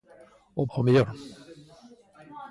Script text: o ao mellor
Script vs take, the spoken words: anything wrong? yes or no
no